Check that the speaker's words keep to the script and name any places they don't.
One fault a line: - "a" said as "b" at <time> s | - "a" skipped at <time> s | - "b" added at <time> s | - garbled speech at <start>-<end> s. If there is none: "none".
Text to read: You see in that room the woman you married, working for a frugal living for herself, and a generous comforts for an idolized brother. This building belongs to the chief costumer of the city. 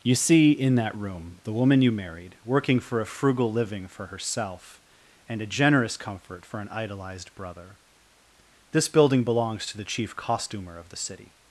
- "comforts" said as "comfort" at 6.0 s